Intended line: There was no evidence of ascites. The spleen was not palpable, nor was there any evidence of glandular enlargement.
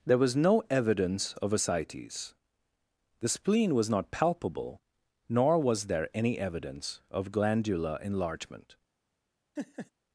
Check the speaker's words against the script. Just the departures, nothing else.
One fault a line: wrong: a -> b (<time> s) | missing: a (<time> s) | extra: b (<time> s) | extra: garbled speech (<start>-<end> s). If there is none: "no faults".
no faults